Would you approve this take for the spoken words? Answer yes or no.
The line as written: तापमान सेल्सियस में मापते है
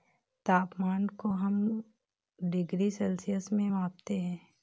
no